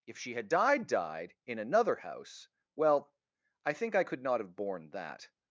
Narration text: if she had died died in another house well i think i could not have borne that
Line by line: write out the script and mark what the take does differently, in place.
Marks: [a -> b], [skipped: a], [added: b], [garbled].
if she had died died in another house well i think i could not have borne that